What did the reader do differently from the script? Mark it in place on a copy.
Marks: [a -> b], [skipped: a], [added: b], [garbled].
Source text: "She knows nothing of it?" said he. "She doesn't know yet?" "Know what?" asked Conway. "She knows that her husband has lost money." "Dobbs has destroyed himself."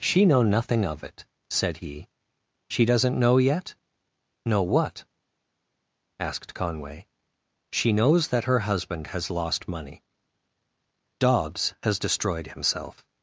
"She [knows -> know] nothing of it?" said he. "She doesn't know yet?" "Know what?" asked Conway. "She knows that her husband has lost money." "Dobbs has destroyed himself."